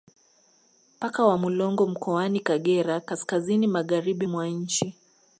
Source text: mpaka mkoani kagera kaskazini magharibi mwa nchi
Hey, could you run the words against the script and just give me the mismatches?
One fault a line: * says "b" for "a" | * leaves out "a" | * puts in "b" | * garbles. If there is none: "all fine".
* puts in "wa mulongo"